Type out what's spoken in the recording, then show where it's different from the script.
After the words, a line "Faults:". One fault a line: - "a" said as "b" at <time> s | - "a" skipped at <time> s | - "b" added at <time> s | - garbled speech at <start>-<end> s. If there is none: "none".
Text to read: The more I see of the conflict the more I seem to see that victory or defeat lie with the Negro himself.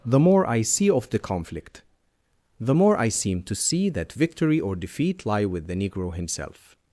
The more I see of the conflict the more I seem to see that victory or defeat lie with the Negro himself.
Faults:
none